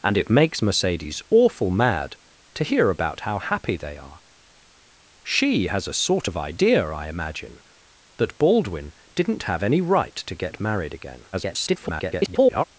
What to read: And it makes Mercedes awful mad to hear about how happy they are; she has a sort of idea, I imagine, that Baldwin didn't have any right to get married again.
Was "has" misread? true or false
false